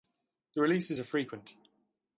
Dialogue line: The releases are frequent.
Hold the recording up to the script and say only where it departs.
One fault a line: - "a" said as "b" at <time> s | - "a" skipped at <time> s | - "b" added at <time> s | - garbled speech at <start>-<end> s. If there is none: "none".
none